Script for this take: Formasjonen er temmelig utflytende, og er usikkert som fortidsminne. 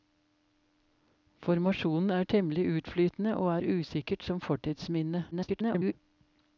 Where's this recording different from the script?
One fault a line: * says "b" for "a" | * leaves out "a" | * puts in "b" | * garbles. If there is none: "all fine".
* garbles